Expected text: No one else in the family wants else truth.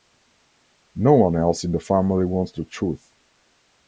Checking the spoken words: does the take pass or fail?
fail